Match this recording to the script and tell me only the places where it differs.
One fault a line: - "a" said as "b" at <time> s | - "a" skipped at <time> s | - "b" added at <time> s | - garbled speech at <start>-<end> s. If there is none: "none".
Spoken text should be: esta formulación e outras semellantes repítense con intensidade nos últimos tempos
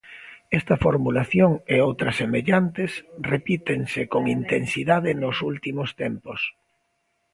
none